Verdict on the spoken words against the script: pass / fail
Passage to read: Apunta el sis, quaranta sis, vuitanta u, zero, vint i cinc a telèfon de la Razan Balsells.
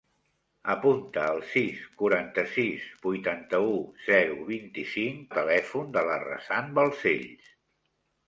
pass